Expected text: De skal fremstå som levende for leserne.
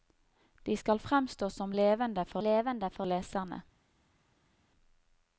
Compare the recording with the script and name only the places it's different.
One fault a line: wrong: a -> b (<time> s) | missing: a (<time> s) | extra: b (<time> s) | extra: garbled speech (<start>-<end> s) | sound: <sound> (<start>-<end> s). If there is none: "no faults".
extra: levende for (2.4 s)